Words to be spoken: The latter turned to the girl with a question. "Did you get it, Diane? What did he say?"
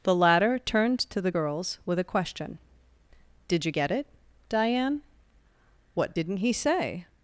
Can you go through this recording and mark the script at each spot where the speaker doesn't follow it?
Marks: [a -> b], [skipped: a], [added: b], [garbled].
The latter turned to the [girl -> girls] with a question. "Did you get it, Diane? What [did -> didn't] he say?"